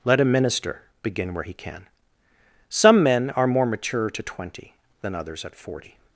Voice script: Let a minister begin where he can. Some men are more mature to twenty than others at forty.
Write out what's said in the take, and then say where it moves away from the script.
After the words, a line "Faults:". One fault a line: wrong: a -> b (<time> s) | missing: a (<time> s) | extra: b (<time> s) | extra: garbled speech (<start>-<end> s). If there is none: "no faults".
Let a minister begin where he can. Some men are more mature to twenty than others at forty.
Faults:
no faults